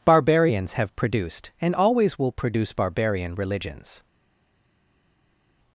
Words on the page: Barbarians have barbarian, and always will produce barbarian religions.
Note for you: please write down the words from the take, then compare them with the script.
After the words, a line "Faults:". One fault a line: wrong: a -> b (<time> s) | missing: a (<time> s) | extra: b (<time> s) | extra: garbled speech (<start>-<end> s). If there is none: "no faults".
Barbarians have produced, and always will produce barbarian religions.
Faults:
wrong: barbarian -> produced (0.9 s)